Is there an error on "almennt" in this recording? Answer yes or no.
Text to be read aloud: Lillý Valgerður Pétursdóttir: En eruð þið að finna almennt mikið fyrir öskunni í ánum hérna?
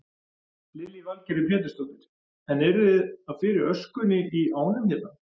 yes